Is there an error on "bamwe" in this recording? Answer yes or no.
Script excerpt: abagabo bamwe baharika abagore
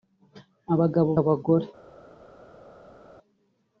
yes